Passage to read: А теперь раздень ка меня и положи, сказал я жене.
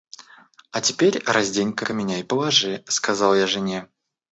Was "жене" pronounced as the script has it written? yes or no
yes